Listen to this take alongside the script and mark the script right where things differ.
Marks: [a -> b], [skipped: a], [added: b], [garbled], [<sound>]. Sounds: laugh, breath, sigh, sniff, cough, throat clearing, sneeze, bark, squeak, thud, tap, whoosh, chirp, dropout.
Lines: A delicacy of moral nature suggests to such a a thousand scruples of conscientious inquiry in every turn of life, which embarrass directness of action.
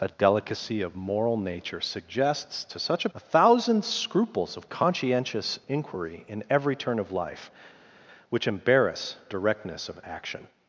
A delicacy of moral nature suggests to such a a thousand scruples of conscientious inquiry in every turn of life, which embarrass directness of action.